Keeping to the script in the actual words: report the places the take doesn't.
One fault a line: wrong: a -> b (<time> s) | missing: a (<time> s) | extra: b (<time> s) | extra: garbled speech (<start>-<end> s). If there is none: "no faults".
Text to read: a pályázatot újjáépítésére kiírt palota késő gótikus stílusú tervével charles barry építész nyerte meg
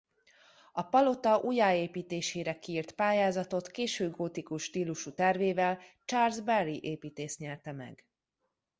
wrong: pályázatot -> palota (0.8 s)
wrong: palota -> pályázatot (2.9 s)